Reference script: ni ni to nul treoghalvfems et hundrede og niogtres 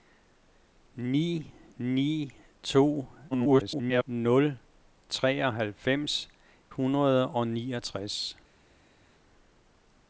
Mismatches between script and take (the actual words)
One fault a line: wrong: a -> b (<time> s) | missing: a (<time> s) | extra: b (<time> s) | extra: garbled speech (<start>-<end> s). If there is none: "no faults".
extra: garbled speech (3.3-4.0 s)
missing: et (6.3 s)